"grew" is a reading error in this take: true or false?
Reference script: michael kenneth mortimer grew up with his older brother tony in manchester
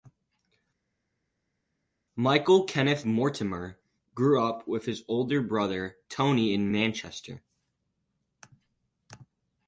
false